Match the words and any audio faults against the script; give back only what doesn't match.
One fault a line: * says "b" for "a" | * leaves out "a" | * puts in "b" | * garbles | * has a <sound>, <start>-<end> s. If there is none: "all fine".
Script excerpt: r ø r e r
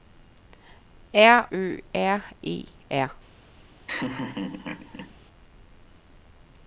* has a laugh, 3.9-5.1 s